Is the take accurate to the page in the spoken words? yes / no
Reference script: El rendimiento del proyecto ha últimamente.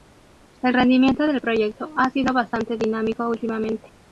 no